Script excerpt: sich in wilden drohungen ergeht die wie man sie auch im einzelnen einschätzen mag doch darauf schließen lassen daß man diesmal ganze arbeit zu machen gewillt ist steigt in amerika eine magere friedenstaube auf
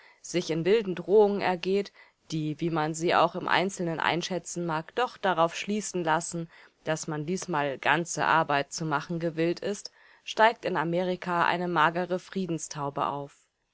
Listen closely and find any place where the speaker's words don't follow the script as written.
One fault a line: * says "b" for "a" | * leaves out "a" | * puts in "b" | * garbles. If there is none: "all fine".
all fine